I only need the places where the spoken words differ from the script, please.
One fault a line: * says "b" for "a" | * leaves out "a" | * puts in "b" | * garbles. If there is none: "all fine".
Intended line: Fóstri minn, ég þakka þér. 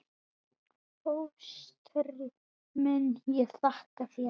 all fine